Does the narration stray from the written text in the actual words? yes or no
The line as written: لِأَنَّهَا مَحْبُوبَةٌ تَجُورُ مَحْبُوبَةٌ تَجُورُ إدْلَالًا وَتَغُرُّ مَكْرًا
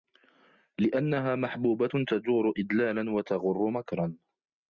yes